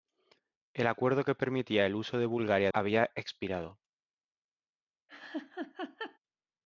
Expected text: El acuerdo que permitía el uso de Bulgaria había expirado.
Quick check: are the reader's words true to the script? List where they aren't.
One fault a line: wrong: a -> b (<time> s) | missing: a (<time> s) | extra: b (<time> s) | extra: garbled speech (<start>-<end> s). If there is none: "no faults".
no faults